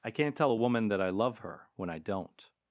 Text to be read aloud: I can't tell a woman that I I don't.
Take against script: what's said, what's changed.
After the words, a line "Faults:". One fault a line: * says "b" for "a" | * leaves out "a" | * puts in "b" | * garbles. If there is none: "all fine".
I can't tell a woman that I love her when I don't.
Faults:
* puts in "love her when"